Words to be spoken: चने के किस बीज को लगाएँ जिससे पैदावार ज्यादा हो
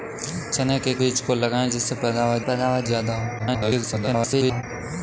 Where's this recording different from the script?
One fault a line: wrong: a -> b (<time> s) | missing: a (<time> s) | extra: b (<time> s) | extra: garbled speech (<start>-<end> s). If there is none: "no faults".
missing: किस (0.9 s)
extra: पैदावार (2.4 s)
extra: garbled speech (3.4-4.6 s)